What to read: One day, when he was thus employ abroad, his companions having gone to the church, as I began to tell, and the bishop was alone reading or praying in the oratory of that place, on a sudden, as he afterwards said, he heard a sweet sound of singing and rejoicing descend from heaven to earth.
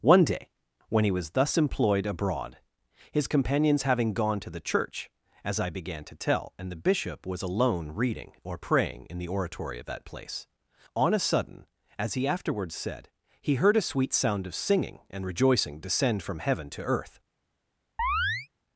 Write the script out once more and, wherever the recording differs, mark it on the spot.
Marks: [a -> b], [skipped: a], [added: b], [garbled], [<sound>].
One day, when he was thus [employ -> employed] abroad, his companions having gone to the church, as I began to tell, and the bishop was alone reading or praying in the oratory of that place, on a sudden, as he afterwards said, he heard a sweet sound of singing and rejoicing descend from heaven to earth. [chirp]